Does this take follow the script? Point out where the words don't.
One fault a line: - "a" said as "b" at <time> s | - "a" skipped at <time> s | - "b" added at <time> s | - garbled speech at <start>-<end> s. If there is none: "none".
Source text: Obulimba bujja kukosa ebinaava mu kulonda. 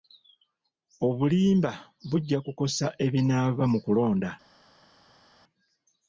none